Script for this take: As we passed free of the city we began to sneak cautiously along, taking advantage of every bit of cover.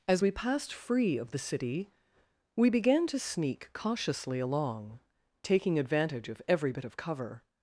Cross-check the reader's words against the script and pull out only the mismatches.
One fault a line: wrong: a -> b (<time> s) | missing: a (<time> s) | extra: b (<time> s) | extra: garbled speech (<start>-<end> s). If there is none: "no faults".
no faults